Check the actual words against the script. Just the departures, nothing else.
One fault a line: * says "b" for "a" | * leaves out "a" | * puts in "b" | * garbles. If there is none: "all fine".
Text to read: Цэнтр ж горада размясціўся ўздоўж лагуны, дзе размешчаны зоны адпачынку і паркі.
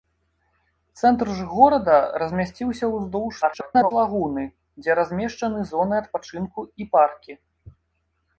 * garbles